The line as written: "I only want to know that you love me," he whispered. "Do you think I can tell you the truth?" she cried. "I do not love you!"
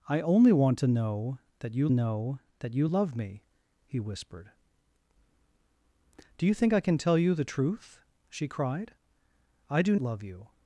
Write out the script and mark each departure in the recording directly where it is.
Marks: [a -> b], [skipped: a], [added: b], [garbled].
"I only want to know that you [added: know that you] love me," he whispered. "Do you think I can tell you the truth?" she cried. "I do [skipped: not] love you!"